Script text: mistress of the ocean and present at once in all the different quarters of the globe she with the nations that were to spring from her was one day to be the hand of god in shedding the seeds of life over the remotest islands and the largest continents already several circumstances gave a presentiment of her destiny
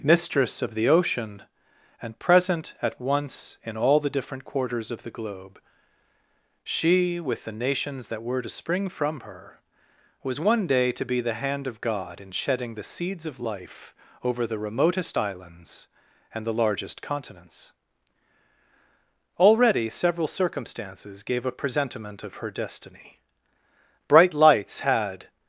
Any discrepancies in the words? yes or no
yes